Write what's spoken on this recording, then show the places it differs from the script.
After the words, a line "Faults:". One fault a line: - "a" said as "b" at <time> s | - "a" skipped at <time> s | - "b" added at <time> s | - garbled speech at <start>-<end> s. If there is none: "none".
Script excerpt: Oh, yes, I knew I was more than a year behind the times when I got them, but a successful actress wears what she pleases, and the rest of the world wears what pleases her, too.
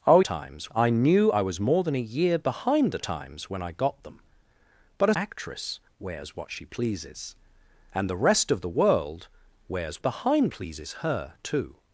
Oh, times, I knew I was more than a year behind the times when I got them, but a actress wears what she pleases, and the rest of the world wears behind pleases her, too.
Faults:
- "yes" said as "times" at 0.2 s
- "successful" skipped at 5.1 s
- "what" said as "behind" at 10.0 s